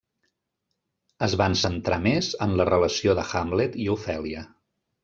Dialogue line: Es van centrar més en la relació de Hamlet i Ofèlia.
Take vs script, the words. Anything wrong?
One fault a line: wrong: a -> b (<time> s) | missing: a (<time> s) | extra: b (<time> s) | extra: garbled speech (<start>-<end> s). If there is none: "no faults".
no faults